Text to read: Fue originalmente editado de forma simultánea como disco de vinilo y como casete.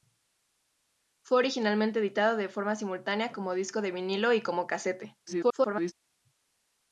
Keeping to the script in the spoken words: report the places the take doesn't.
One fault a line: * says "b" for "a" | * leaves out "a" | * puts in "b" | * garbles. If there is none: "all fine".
* garbles